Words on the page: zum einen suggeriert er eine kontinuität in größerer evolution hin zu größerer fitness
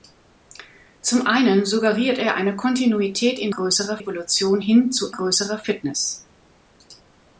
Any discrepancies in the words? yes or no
no